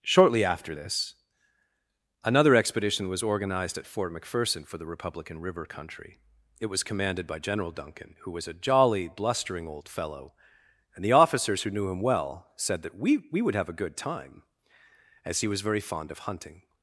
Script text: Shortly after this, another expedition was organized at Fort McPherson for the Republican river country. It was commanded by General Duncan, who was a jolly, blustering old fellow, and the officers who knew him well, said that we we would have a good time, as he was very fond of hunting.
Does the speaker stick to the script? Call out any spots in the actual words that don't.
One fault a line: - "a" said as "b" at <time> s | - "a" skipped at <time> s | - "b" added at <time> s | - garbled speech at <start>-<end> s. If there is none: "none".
none